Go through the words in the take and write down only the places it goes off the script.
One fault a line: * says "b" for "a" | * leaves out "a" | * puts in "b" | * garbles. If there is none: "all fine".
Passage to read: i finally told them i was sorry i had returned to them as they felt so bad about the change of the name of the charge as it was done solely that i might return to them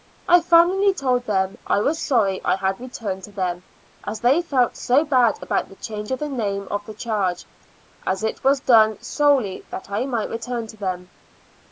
all fine